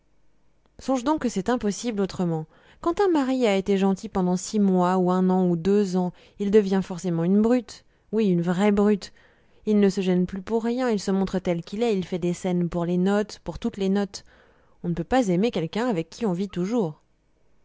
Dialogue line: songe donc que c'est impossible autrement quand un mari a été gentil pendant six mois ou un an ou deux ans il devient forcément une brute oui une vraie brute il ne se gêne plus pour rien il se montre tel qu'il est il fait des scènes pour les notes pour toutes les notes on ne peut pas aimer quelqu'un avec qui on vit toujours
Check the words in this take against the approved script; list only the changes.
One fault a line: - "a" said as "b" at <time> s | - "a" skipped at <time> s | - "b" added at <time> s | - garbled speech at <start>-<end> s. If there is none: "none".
none